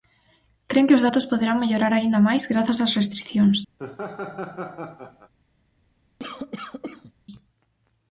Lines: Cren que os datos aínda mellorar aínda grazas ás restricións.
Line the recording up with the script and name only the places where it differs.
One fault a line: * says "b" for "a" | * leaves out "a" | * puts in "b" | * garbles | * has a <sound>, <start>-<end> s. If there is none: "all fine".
* says "poderán" for "aínda"
* puts in "máis"
* has a laugh, 3.8-5.3 s
* has a cough, 6.2-7.1 s